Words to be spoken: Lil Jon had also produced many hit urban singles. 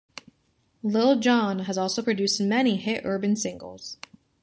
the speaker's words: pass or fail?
fail